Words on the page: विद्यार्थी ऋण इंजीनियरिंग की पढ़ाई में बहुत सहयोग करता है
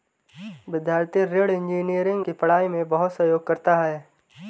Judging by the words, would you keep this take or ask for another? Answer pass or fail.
pass